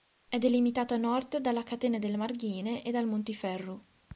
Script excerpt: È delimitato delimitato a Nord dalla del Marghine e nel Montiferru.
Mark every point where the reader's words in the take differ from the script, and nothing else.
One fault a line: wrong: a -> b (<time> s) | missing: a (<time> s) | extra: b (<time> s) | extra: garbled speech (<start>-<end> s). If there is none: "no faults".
missing: delimitato (0.9 s)
extra: catena (1.6 s)
wrong: nel -> dal (2.9 s)